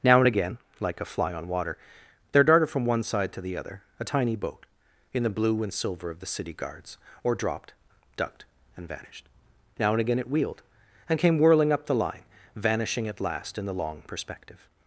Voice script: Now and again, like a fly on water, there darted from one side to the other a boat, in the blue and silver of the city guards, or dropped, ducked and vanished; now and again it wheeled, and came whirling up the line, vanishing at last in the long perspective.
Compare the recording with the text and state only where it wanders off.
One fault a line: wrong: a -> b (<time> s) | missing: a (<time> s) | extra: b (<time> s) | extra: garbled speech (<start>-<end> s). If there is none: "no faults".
extra: tiny (4.0 s)